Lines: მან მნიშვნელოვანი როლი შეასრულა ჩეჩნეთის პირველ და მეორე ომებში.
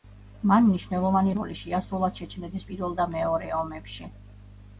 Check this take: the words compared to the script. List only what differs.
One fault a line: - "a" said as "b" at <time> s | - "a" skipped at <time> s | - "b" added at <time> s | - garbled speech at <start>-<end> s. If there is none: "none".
none